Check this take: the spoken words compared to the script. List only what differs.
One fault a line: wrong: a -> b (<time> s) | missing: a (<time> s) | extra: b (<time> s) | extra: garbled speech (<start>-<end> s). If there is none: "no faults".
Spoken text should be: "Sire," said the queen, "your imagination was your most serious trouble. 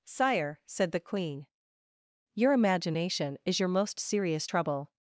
wrong: was -> is (3.5 s)